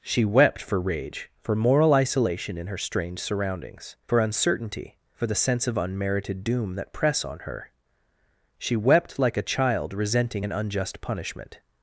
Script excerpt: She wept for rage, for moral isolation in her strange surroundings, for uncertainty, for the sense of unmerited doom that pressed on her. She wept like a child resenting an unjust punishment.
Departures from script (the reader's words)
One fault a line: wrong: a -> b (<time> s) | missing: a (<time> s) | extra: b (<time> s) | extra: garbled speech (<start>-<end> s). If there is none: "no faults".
wrong: pressed -> press (6.9 s)